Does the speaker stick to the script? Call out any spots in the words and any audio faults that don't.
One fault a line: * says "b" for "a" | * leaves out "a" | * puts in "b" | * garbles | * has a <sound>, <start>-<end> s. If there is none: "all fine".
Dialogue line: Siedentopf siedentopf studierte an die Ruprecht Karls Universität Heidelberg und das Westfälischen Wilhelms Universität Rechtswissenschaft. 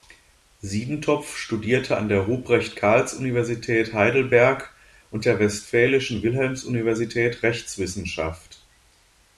* leaves out "siedentopf"
* says "der" for "die"
* says "der" for "das"